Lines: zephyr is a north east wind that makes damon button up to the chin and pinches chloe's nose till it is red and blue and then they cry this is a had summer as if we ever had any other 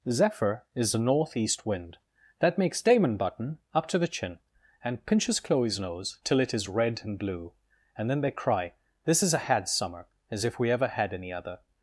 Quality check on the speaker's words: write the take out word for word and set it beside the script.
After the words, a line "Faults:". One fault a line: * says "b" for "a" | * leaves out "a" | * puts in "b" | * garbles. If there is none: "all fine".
zephyr is the northeast wind that makes damon button up to the chin and pinches chloe's nose till it is red and blue and then they cry this is a had summer as if we ever had any other
Faults:
* says "the northeast" for "a north east"